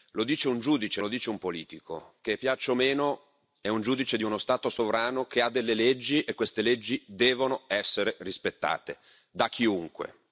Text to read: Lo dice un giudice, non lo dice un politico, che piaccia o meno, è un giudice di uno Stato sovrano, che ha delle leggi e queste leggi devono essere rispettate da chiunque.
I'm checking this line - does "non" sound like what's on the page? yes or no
no